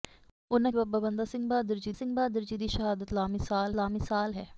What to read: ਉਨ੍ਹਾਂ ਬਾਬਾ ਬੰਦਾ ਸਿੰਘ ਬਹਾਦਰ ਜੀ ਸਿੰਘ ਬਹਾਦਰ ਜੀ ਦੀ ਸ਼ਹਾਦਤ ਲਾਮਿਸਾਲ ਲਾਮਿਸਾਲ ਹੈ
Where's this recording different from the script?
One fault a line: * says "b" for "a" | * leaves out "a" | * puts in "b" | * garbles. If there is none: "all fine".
all fine